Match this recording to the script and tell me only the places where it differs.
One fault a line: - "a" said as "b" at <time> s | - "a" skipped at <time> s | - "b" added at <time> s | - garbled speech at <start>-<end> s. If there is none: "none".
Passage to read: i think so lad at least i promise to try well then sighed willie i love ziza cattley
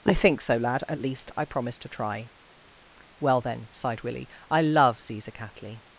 none